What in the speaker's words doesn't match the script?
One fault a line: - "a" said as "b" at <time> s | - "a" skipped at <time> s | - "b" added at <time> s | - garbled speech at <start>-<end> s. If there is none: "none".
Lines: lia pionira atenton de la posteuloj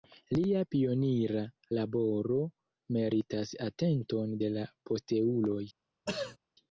- "laboro meritas" added at 1.8 s